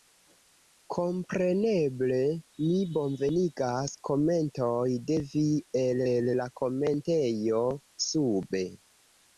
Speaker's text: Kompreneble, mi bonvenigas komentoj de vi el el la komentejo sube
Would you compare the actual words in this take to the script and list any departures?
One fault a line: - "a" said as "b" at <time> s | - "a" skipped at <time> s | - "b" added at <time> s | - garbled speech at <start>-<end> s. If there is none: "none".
none